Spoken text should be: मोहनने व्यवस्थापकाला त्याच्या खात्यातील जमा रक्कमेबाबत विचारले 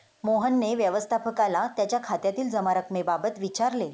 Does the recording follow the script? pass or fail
pass